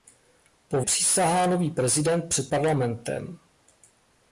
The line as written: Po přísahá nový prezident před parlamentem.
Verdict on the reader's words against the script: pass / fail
pass